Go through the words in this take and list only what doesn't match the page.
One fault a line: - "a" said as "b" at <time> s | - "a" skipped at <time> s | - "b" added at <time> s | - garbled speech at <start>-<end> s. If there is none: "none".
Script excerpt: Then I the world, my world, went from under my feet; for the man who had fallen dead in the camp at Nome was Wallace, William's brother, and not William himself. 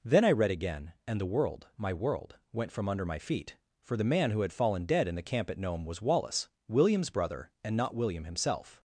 - "read again and" added at 0.3 s